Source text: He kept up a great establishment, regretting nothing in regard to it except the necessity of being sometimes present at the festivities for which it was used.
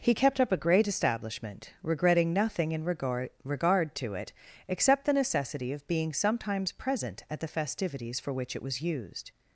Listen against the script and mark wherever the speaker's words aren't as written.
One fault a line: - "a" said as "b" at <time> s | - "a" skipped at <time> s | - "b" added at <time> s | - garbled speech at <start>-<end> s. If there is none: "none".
- "regard" added at 3.4 s